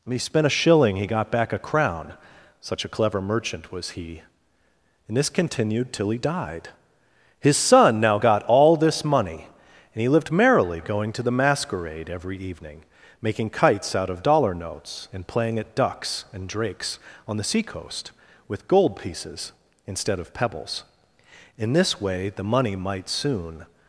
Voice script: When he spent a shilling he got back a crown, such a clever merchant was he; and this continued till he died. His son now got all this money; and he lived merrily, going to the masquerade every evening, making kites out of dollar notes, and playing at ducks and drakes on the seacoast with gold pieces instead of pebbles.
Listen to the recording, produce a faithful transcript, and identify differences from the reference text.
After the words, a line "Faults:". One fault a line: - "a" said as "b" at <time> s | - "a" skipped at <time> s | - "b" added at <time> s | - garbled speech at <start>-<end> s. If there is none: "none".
When he spent a shilling he got back a crown, such a clever merchant was he; and this continued till he died. His son now got all this money; and he lived merrily, going to the masquerade every evening, making kites out of dollar notes, and playing at ducks and drakes on the seacoast with gold pieces instead of pebbles. In this way the money might soon
Faults:
- "In this way the money might soon" added at 21.6 s